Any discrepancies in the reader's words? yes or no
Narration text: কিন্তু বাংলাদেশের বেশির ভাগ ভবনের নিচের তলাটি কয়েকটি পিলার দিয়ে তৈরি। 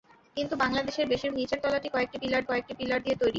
yes